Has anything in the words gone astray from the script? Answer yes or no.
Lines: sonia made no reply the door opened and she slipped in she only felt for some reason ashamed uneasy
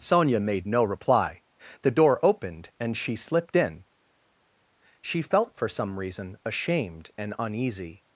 yes